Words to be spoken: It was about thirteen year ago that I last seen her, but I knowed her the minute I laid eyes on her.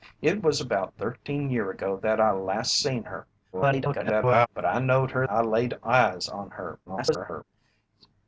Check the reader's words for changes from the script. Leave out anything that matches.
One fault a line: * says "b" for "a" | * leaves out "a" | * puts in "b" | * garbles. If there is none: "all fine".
* garbles
* leaves out "the minute"
* garbles